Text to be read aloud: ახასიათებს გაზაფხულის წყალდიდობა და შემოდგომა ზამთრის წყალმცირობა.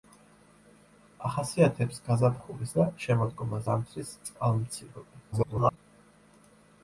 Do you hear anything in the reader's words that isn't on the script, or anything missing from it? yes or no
yes